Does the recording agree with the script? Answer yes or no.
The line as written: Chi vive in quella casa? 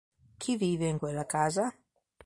yes